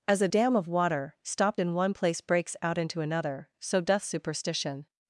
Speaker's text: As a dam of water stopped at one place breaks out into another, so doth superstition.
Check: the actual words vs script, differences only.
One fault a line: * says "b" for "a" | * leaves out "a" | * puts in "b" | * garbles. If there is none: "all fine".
* says "in" for "at"